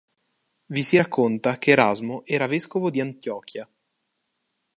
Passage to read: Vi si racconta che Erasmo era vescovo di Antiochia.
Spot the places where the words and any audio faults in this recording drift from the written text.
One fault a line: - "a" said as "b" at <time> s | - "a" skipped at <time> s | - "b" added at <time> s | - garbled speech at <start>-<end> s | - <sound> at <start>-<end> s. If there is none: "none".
none